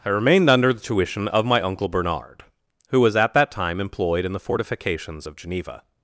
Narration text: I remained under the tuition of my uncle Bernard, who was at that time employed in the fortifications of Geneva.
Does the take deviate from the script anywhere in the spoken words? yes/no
no